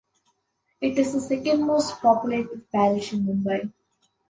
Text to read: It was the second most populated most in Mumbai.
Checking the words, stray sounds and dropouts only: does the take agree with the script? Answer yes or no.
no